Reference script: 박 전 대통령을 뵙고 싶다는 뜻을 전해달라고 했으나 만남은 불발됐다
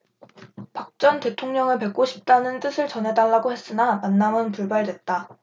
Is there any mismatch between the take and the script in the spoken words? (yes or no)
no